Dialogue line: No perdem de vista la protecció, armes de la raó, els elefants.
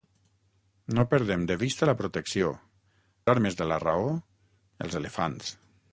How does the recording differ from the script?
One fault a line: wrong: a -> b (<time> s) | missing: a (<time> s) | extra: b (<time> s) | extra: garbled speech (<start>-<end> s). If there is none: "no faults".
no faults